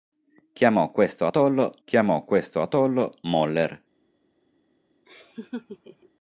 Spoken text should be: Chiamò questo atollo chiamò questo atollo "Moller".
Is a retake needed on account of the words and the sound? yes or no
yes